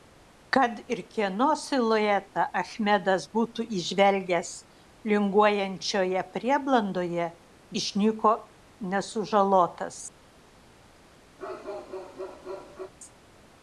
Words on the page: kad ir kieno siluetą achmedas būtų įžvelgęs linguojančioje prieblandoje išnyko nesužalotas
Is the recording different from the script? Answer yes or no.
no